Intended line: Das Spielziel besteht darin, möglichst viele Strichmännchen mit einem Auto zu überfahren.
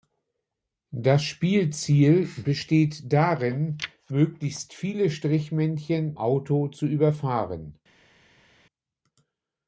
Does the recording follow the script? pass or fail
fail